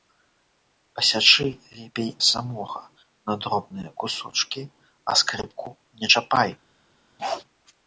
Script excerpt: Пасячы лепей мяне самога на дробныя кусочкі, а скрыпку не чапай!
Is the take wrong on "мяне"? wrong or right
wrong